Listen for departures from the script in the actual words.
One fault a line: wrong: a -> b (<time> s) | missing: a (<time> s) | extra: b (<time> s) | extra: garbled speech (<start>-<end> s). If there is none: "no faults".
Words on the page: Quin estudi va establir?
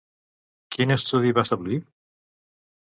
no faults